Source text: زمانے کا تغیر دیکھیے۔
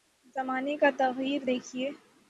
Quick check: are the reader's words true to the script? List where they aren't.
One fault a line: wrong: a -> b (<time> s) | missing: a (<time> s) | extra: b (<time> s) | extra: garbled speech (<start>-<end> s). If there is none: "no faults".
no faults